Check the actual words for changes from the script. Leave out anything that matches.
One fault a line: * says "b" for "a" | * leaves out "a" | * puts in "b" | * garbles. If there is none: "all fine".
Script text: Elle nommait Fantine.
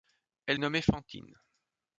all fine